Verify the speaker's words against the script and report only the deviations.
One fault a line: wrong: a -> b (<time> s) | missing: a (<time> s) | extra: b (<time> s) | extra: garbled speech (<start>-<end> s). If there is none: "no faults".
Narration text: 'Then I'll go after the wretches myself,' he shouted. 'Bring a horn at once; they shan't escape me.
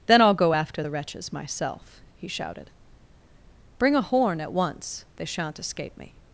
no faults